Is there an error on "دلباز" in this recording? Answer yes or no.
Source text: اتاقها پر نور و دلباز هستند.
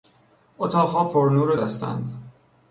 yes